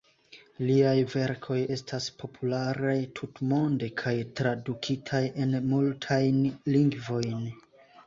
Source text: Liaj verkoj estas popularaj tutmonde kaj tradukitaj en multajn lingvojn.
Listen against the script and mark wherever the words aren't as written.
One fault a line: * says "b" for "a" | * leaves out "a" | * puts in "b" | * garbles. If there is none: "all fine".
all fine